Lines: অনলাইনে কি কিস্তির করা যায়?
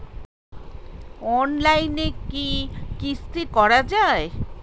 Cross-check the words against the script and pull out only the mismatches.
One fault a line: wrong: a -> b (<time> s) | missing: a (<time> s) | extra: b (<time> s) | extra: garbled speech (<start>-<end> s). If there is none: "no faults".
no faults